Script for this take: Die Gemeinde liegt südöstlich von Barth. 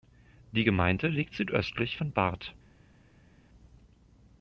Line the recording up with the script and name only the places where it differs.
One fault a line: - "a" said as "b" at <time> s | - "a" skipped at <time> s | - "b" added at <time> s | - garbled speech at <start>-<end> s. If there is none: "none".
none